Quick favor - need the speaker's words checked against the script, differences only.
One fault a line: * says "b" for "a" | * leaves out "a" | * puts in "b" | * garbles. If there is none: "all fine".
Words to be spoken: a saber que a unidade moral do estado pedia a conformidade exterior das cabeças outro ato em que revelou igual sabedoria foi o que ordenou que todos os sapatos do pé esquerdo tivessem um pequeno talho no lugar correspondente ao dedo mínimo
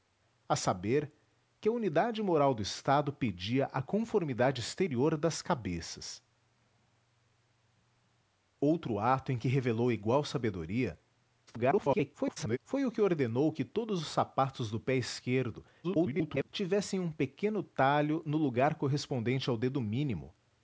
* garbles
* garbles